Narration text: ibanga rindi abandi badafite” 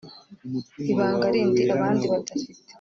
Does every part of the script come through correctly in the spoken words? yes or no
yes